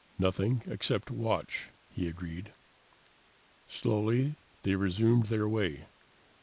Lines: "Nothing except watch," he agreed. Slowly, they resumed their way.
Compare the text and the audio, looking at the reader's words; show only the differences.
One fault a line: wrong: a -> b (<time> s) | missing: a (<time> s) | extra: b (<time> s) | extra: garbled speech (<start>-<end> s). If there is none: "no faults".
no faults